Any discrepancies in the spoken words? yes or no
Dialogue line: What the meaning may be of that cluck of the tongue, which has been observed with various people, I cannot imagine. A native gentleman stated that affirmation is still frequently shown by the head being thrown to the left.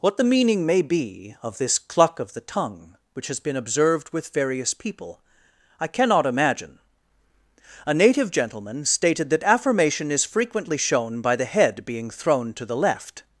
yes